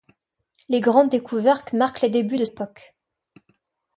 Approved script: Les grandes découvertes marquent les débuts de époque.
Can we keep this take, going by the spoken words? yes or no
yes